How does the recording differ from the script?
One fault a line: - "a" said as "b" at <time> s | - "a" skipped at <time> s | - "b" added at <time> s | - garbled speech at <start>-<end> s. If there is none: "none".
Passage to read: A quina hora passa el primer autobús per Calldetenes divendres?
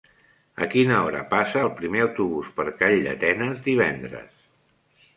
none